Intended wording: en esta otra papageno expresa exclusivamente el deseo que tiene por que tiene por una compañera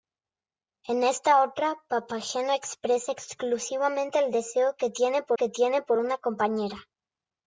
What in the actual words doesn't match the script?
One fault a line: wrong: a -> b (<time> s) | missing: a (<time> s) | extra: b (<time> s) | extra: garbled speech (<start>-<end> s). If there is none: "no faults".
no faults